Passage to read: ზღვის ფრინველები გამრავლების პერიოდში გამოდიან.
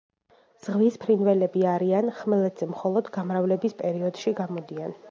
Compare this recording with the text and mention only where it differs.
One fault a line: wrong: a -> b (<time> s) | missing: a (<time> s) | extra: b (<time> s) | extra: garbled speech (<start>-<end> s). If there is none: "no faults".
extra: არიან ხმელეთზე მხოლოდ (1.7 s)